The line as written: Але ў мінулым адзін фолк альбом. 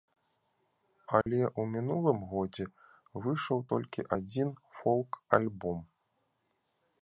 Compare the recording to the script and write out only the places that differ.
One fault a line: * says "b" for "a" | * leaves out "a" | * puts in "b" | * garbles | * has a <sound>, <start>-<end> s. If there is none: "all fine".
* has a dropout, 1.2-1.3 s
* puts in "годзе выйшаў толькі"